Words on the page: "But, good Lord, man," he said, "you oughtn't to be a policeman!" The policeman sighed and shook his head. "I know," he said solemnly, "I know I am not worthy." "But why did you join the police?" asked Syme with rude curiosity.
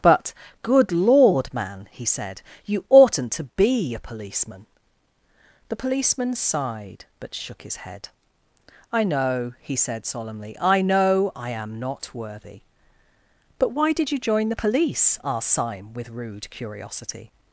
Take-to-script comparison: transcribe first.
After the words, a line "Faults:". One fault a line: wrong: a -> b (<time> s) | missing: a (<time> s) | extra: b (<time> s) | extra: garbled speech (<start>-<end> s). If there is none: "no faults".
"But, good Lord, man," he said, "you oughtn't to be a policeman!" The policeman sighed but shook his head. "I know," he said solemnly, "I know I am not worthy." "But why did you join the police?" asked Syme with rude curiosity.
Faults:
wrong: and -> but (7.2 s)